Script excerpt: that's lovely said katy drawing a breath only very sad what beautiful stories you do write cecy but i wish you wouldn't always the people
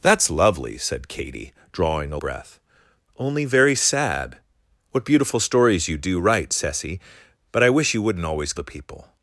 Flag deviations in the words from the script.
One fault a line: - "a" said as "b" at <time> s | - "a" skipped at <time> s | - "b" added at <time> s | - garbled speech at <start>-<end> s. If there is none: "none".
none